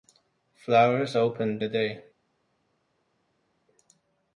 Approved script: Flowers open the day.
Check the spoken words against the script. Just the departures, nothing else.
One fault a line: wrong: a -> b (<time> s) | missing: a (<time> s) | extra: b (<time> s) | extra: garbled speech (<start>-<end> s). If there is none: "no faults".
no faults